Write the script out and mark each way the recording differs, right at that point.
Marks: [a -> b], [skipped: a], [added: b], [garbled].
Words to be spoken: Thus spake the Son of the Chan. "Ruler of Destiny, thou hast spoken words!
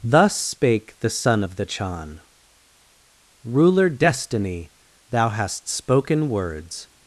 Thus spake the Son of the Chan. "Ruler [skipped: of] Destiny, thou hast spoken words!